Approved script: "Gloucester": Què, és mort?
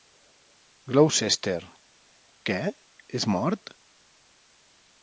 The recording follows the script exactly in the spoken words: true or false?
true